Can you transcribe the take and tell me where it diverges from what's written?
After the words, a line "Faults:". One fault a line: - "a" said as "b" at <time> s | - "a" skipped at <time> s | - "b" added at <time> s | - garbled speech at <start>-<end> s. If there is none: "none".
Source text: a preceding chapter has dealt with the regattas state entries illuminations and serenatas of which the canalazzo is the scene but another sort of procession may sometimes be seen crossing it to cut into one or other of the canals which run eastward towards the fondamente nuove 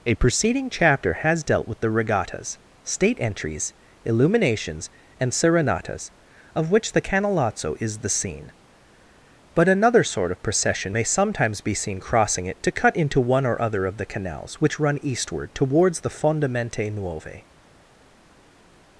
a preceding chapter has dealt with the regattas state entries illuminations and serenatas of which the canalazzo is the scene but another sort of procession may sometimes be seen crossing it to cut into one or other of the canals which run eastward towards the fondamente nuove
Faults:
none